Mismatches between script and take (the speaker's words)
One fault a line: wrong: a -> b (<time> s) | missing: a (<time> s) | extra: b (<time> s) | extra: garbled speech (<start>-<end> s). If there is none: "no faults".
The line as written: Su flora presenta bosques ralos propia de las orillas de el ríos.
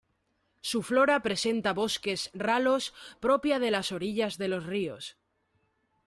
wrong: el -> los (4.5 s)